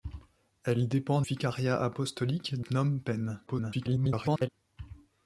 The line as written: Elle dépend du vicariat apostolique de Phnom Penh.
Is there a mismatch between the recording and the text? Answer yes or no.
yes